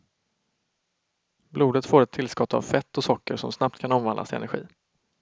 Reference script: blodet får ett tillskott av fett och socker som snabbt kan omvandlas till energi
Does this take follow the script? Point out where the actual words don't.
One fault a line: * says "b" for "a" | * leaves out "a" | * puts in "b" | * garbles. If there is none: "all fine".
all fine